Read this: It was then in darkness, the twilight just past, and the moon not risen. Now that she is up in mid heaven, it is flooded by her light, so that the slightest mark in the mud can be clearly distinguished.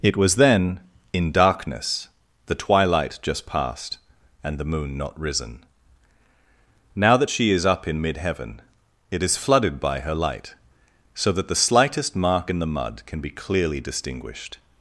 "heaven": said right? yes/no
yes